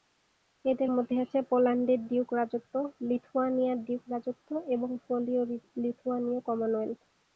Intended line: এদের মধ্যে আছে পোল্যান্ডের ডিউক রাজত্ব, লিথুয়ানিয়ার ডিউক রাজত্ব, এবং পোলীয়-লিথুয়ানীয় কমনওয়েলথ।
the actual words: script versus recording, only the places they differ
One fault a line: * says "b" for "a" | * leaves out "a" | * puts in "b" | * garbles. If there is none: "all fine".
all fine